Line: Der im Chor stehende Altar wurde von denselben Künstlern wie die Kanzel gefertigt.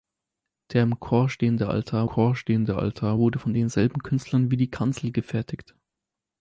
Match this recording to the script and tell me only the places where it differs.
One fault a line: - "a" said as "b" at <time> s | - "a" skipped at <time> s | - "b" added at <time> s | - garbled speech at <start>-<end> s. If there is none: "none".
- "Chor stehende Altar" added at 2.0 s